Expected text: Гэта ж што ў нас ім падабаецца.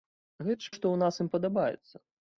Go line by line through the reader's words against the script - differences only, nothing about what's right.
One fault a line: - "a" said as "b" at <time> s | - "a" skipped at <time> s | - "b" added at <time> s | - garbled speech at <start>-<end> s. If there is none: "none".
none